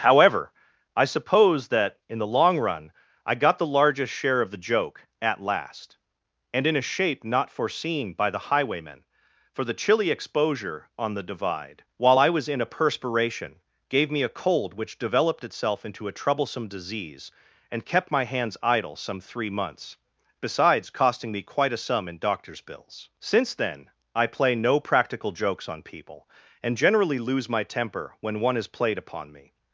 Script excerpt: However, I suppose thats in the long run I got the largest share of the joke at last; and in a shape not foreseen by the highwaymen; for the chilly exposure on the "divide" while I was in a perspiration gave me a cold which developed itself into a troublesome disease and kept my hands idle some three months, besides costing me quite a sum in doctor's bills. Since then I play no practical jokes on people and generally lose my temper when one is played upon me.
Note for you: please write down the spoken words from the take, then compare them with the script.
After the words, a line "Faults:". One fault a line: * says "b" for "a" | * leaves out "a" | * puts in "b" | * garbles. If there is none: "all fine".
However, I suppose that in the long run I got the largest share of the joke at last; and in a shape not foreseen by the highwaymen; for the chilly exposure on the "divide" while I was in a perspiration gave me a cold which developed itself into a troublesome disease and kept my hands idle some three months, besides costing me quite a sum in doctor's bills. Since then I play no practical jokes on people and generally lose my temper when one is played upon me.
Faults:
* says "that" for "thats"